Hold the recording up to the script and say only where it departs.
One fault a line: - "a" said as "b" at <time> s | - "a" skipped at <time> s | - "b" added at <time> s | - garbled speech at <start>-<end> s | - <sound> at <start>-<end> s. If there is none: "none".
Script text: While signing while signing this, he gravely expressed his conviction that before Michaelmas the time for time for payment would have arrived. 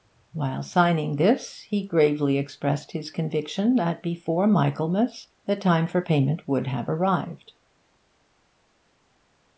- "while signing" skipped at 1.2 s
- "time for" skipped at 6.0 s